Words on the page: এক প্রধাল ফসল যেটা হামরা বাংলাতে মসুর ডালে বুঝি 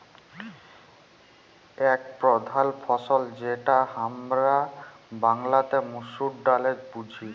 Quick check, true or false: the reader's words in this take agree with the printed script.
true